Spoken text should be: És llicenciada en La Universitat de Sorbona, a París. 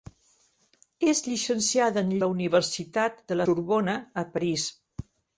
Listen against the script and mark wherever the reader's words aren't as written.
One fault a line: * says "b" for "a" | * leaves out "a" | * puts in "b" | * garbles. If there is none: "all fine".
all fine